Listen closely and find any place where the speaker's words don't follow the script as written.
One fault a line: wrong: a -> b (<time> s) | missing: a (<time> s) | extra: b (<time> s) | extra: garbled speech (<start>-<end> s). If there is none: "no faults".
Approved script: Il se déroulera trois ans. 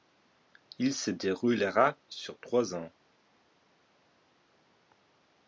extra: sur (2.1 s)